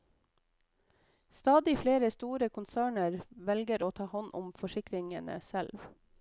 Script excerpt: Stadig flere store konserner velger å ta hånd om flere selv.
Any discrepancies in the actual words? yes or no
yes